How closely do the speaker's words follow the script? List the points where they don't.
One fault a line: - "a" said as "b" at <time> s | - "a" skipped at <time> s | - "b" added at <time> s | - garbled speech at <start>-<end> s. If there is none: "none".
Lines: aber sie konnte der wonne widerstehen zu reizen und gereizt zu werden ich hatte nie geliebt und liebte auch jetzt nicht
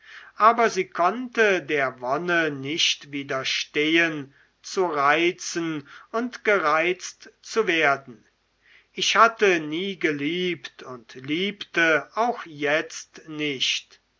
- "nicht" added at 2.5 s